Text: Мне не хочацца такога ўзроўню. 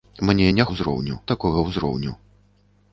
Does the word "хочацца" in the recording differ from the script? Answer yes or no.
yes